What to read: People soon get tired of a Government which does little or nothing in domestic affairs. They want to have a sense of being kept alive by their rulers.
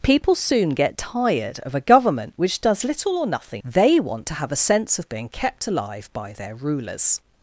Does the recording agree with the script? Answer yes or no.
no